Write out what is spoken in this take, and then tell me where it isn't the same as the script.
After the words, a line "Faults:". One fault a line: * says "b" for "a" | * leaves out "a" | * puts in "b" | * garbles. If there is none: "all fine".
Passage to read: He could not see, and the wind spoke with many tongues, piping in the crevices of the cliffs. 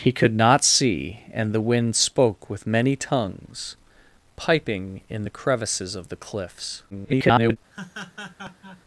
He could not see, and the wind spoke with many tongues, piping in the crevices of the cliffs. [garbled]
Faults:
* garbles